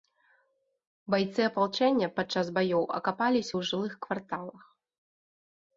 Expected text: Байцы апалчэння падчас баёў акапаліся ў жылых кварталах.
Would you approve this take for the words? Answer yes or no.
yes